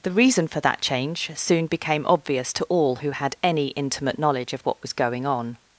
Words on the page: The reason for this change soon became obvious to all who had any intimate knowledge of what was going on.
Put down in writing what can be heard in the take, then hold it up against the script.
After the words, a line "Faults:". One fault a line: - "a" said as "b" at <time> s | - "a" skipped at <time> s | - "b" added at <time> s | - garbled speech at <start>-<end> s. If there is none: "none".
The reason for that change soon became obvious to all who had any intimate knowledge of what was going on.
Faults:
- "this" said as "that" at 0.6 s